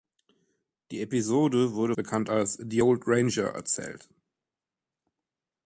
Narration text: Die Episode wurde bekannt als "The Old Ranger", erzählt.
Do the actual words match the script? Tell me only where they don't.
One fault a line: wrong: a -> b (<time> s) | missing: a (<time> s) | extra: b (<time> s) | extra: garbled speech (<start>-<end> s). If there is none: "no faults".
no faults